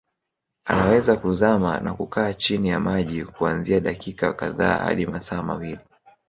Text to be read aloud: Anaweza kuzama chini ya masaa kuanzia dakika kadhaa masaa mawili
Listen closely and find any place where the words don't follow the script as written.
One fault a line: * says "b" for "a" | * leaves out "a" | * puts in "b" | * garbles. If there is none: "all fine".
* puts in "na kukaa"
* says "maji" for "masaa"
* puts in "hadi"